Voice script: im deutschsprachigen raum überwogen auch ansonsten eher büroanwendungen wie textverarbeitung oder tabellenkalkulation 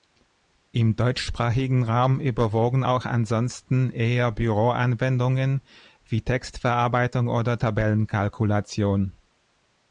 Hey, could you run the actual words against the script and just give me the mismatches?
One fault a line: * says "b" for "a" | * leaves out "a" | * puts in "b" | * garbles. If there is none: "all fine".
all fine